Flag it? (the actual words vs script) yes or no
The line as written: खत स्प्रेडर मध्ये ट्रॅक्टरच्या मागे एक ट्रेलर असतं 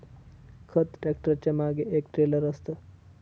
yes